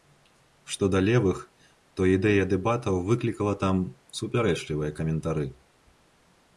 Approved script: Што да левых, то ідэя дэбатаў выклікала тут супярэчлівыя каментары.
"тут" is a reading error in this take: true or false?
true